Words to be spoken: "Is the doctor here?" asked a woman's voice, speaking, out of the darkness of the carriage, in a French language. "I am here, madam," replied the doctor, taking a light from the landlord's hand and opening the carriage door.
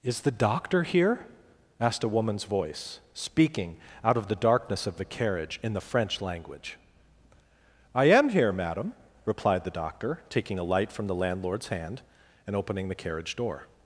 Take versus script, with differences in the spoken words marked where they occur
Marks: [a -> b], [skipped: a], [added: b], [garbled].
"Is the doctor here?" asked a woman's voice, speaking, out of the darkness of the carriage, in [a -> the] French language. "I am here, madam," replied the doctor, taking a light from the landlord's hand and opening the carriage door.